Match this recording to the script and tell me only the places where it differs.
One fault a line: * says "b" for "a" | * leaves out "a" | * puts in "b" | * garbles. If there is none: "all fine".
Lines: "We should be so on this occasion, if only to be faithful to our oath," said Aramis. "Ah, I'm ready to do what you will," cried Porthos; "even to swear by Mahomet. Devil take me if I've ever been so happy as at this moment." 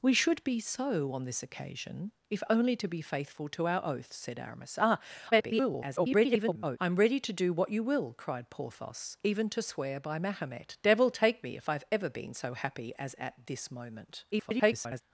* garbles
* garbles